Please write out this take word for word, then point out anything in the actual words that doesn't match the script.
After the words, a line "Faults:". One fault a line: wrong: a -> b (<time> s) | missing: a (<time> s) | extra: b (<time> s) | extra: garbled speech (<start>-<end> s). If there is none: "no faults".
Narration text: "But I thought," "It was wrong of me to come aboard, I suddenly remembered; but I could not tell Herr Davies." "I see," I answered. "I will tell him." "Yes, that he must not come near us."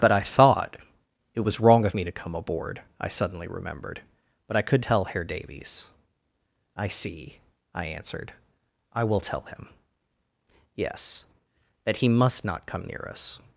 "But I thought," "It was wrong of me to come aboard, I suddenly remembered; but I could tell Herr Davies." "I see," I answered. "I will tell him." "Yes, that he must not come near us."
Faults:
missing: not (4.8 s)